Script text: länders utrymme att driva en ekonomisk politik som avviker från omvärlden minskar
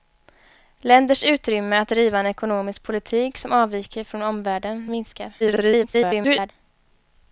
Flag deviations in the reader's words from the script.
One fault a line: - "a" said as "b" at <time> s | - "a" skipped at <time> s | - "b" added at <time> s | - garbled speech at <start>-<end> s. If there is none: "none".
- garbled speech at 5.4-6.5 s